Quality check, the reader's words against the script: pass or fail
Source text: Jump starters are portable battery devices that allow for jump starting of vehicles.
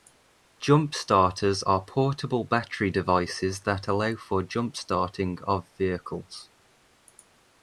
pass